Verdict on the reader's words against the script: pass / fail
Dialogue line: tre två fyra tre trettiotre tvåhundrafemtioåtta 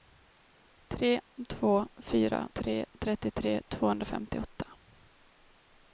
pass